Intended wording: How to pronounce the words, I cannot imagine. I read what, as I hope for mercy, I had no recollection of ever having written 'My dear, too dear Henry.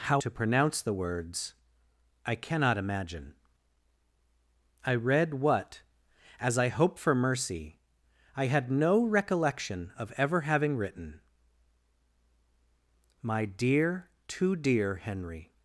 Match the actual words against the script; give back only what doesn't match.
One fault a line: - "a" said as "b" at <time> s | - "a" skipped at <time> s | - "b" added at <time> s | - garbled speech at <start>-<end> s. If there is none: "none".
none